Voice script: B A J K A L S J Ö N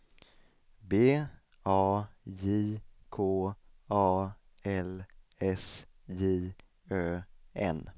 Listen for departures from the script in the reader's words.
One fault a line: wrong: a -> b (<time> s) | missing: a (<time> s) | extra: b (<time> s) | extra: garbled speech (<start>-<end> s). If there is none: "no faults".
no faults